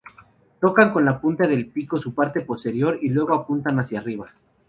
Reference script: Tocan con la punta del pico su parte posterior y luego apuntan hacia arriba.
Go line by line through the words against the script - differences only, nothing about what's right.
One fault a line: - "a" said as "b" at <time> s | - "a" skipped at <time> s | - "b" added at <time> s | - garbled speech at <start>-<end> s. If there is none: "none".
none